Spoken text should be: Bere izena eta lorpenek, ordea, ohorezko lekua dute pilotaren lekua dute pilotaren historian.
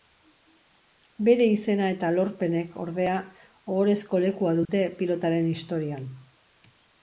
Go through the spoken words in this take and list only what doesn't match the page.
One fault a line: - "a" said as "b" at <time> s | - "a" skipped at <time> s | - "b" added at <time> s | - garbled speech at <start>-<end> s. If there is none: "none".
- "lekua dute pilotaren" skipped at 5.5 s